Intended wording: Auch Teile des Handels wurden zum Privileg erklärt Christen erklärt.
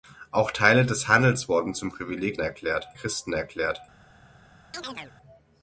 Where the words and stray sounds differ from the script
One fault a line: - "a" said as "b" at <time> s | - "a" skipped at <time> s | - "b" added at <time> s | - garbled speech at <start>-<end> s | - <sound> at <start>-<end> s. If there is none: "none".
- chirp at 4.7-5.1 s